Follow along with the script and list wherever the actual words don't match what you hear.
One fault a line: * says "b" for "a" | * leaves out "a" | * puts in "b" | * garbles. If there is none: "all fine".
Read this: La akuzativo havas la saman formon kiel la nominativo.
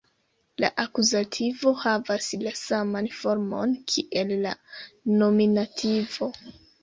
all fine